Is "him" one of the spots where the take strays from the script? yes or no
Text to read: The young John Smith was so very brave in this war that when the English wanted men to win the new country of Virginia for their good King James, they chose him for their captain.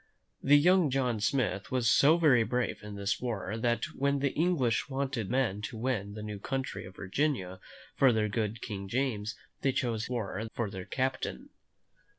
yes